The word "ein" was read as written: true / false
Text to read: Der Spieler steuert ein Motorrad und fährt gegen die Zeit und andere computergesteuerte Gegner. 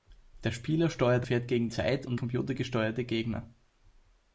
false